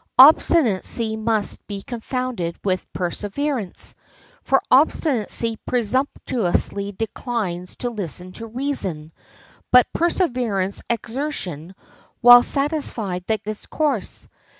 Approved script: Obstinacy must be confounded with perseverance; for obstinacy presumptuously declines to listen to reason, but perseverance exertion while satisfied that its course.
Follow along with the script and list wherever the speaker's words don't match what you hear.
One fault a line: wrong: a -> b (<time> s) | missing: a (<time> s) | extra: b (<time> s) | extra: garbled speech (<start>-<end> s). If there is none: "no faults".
no faults